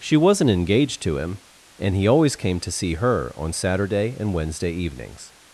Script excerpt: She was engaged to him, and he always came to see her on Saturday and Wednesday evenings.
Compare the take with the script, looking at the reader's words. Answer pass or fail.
fail